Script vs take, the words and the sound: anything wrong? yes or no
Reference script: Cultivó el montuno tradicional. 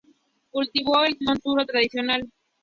no